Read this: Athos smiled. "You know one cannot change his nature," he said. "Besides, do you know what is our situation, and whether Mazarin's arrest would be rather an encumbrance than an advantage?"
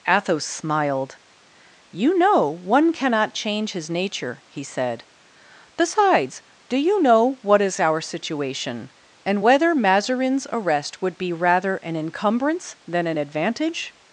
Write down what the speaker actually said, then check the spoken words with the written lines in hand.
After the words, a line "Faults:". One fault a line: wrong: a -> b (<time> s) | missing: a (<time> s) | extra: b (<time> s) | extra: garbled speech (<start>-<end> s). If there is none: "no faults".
Athos smiled. "You know one cannot change his nature," he said. "Besides, do you know what is our situation, and whether Mazarin's arrest would be rather an encumbrance than an advantage?"
Faults:
no faults